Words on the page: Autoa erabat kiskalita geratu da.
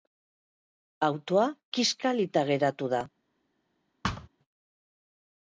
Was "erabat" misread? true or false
true